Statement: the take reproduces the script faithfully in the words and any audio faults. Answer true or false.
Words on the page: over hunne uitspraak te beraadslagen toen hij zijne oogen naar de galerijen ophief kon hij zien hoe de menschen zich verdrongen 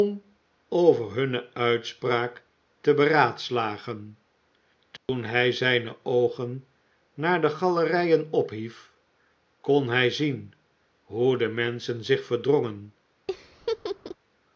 false